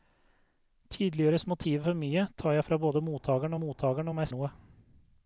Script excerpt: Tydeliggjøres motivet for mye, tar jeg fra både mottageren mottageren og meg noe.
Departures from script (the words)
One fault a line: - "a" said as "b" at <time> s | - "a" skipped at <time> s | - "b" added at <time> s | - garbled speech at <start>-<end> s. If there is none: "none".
none